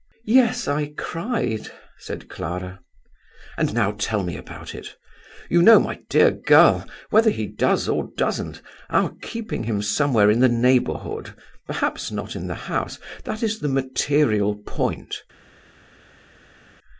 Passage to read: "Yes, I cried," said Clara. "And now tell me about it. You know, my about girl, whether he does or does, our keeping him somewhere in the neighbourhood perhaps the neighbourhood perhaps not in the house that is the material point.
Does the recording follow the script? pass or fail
fail